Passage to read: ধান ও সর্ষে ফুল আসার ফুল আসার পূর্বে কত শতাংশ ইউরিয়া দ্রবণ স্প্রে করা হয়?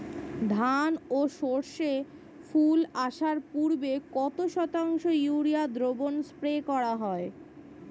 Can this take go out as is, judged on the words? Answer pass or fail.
fail